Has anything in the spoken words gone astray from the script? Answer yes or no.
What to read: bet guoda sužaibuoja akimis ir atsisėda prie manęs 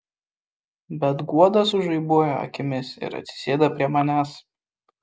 no